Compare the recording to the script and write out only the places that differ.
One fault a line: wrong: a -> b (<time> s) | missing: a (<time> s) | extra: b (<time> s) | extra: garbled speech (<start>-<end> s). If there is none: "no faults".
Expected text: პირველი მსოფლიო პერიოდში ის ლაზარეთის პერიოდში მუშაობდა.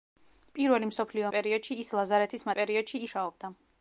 no faults